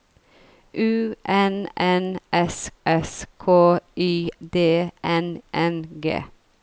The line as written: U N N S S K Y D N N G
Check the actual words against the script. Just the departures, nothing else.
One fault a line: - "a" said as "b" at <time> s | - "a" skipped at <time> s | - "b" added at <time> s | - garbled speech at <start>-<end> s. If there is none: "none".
none